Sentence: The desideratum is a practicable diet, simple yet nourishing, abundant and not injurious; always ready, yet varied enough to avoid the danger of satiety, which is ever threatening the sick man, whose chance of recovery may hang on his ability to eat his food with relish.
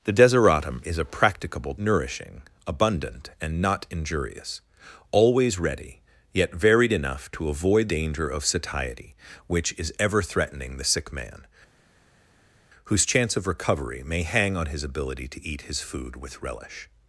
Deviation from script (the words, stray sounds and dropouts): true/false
true